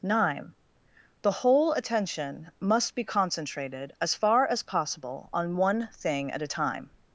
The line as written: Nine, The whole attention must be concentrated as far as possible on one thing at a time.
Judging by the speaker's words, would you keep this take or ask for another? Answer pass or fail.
pass